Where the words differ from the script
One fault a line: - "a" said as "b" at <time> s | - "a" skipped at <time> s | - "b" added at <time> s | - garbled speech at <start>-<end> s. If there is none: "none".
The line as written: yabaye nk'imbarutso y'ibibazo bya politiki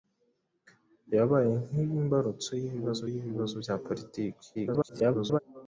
- "y'ibibazo" added at 3.1 s
- garbled speech at 4.5-5.4 s